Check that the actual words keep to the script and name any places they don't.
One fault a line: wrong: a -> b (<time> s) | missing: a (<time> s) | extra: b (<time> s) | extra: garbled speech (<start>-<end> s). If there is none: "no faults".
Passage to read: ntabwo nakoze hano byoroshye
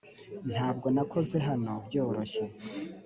no faults